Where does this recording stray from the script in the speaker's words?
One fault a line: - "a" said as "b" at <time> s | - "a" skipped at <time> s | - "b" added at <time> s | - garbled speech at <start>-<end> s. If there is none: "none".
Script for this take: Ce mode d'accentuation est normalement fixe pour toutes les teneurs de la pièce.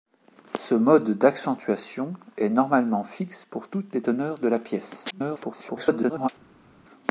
- garbled speech at 5.1-6.3 s